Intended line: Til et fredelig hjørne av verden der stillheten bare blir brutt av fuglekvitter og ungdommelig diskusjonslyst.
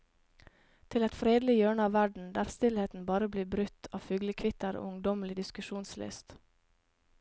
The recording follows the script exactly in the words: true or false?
true